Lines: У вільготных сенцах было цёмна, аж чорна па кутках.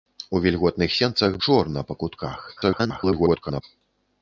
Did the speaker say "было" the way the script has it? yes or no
no